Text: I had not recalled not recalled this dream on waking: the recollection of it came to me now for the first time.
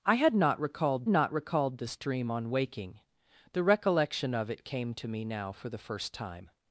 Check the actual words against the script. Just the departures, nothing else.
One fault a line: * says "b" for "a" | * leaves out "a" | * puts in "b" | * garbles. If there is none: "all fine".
all fine